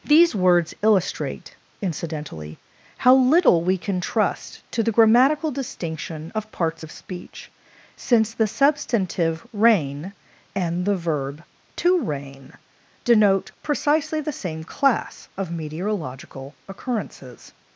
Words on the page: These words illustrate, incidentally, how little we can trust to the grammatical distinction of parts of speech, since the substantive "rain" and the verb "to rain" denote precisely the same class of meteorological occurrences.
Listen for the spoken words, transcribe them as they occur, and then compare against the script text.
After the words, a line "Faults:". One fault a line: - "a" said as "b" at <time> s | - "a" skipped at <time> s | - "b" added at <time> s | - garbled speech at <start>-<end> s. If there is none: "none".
These words illustrate, incidentally, how little we can trust to the grammatical distinction of parts of speech, since the substantive "rain" and the verb "to rain" denote precisely the same class of meteorological occurrences.
Faults:
none